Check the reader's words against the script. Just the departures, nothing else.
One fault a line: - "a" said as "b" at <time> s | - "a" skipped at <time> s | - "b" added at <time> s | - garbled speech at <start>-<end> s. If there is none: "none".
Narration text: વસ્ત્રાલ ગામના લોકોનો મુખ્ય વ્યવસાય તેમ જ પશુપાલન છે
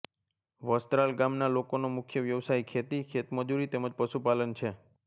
- "ખેતી ખેતમજૂરી" added at 2.7 s